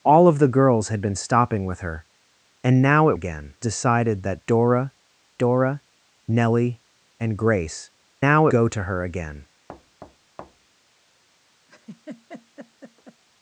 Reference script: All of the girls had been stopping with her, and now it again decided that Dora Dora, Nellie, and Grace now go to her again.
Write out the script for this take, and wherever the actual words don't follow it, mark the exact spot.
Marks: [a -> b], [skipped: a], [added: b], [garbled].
All of the girls had been stopping with her, and now it again decided that Dora Dora, Nellie, and Grace now go to her again.